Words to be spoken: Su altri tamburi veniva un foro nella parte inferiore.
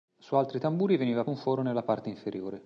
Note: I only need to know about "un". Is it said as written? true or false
true